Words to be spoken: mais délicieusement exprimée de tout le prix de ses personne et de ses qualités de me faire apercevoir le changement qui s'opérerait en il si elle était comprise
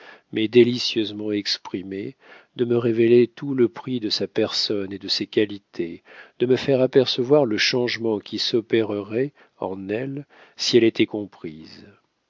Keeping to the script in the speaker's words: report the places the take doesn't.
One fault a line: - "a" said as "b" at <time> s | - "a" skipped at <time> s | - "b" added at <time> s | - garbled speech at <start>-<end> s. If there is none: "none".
- "me révéler" added at 2.6 s
- "ses" said as "sa" at 4.1 s
- "il" said as "elle" at 9.9 s